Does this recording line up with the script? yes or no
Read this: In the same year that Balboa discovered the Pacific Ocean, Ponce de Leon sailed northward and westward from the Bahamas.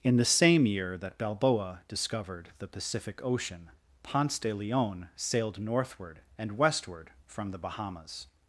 yes